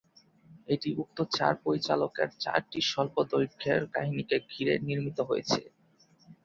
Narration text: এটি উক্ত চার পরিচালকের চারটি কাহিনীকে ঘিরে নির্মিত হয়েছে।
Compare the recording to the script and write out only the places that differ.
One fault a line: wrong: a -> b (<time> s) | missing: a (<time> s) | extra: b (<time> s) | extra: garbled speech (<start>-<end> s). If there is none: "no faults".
extra: স্বল্পদৈর্ঘ্যের (2.8 s)